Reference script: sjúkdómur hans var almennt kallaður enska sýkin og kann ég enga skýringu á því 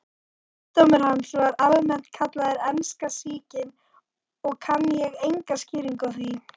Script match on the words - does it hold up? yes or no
yes